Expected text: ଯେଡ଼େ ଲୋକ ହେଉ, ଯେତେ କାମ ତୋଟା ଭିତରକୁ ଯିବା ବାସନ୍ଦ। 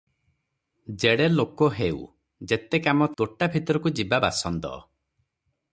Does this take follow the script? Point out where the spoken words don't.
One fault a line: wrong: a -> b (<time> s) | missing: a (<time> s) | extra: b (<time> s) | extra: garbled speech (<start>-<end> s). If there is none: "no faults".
no faults